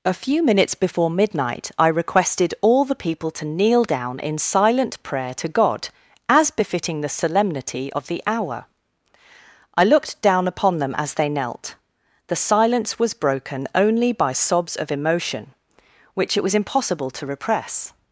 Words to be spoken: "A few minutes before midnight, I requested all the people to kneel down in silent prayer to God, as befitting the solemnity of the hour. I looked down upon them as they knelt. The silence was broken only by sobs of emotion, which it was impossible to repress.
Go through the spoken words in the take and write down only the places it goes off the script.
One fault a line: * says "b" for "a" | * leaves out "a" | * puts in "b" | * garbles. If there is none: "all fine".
all fine